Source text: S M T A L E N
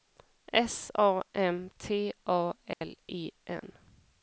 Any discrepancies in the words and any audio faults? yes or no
yes